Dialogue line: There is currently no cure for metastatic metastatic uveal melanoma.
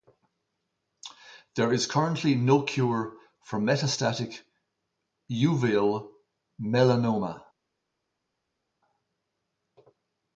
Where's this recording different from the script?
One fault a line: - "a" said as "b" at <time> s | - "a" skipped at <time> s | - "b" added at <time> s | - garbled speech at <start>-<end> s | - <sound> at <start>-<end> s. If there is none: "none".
- "metastatic" skipped at 4.4 s